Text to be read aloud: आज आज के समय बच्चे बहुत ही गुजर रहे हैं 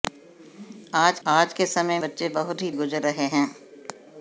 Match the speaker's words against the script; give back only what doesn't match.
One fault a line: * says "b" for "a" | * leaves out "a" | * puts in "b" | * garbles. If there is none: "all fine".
all fine